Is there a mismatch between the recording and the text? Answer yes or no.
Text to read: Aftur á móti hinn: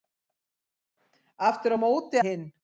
no